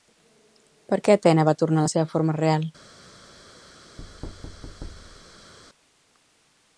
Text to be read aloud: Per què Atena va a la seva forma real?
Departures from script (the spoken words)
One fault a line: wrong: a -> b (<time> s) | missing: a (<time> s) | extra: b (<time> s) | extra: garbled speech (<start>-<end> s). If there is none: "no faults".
extra: tornar (1.6 s)